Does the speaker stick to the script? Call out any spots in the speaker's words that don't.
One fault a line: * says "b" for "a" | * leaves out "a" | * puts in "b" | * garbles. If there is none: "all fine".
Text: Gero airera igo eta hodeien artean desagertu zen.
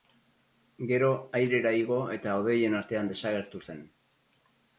all fine